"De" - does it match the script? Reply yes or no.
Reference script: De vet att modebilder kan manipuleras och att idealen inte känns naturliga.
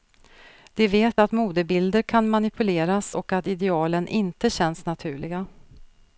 yes